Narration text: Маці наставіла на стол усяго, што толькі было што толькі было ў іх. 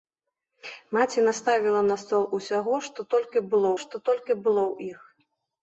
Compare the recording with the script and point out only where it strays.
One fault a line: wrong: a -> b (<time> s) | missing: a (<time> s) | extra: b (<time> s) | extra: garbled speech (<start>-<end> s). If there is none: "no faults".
no faults